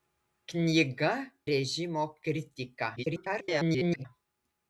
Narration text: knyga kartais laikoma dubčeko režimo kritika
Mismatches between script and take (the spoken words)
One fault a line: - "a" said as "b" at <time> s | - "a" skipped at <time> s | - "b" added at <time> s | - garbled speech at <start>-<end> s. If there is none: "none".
- "kartais laikoma dubčeko" skipped at 1.1 s
- garbled speech at 3.0-4.1 s